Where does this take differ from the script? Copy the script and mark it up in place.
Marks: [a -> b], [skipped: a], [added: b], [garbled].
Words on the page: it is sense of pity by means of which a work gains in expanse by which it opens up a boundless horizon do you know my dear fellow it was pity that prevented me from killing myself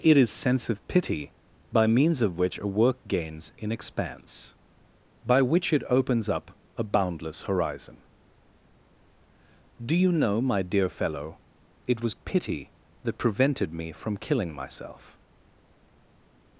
it is sense of pity by means of which a work gains in expanse by which it opens up a boundless horizon do you know my dear fellow it was pity that prevented me from killing myself